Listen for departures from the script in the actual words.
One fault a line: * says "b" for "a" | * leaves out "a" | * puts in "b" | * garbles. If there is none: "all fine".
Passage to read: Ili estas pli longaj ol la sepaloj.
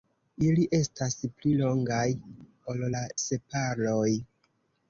all fine